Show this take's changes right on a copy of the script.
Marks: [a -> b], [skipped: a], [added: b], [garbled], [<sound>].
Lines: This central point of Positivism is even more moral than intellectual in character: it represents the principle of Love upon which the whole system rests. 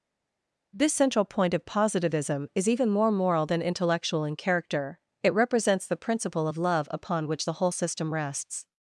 This central point of Positivism is even more moral than intellectual in character: it represents the principle of Love upon which the whole system rests.